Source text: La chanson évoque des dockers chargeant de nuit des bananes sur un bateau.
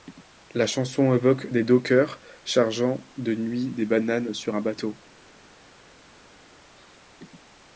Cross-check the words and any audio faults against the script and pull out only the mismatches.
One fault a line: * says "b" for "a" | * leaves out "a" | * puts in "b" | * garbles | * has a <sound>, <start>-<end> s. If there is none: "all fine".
all fine